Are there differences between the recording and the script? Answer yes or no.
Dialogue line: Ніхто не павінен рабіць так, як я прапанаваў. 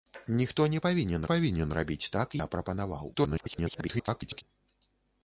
yes